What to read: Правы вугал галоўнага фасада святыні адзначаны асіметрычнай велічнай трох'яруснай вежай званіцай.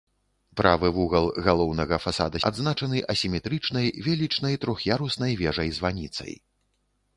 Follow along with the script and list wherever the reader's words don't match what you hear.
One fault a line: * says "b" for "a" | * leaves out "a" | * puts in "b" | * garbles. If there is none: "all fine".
* leaves out "святыні"